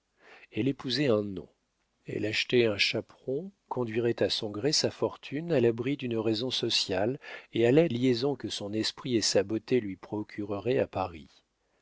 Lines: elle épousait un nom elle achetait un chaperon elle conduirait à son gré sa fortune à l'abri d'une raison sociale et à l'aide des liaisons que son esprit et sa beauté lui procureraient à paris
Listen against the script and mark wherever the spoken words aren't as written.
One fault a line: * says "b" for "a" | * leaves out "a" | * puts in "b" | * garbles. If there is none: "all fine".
* leaves out "elle"
* leaves out "des"